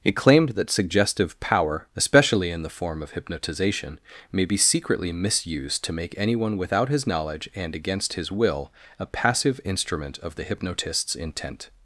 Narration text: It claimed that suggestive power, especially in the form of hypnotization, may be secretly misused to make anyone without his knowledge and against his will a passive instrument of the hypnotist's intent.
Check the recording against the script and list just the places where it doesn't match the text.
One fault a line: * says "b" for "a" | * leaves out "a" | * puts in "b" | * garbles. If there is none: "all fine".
all fine